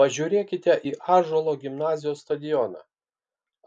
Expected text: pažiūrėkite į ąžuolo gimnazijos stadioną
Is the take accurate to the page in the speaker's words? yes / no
yes